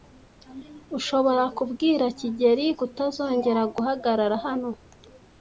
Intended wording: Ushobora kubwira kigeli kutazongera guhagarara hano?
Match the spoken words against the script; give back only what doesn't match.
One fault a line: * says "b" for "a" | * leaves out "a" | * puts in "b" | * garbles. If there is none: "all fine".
all fine